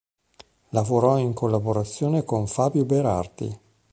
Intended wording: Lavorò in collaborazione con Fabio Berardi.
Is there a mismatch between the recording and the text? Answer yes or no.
no